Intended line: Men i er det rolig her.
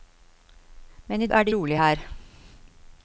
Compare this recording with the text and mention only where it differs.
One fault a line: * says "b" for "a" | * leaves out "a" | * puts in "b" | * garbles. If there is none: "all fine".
all fine